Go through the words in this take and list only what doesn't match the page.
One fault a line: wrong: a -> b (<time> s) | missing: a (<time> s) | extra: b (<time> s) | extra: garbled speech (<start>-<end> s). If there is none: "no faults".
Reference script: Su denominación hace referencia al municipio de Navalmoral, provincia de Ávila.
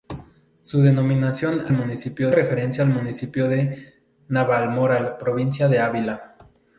wrong: hace -> municipio (1.7 s)